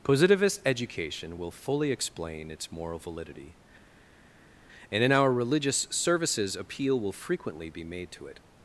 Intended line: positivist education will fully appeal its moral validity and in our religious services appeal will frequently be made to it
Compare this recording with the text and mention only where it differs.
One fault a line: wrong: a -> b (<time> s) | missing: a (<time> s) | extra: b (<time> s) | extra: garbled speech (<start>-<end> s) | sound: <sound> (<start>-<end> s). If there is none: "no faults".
wrong: appeal -> explain (1.9 s)